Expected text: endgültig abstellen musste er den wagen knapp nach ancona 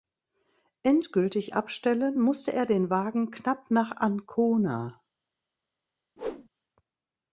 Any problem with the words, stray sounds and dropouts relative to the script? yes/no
yes